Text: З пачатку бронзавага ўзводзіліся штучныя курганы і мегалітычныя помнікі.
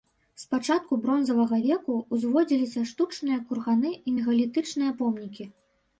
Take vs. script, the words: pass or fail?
fail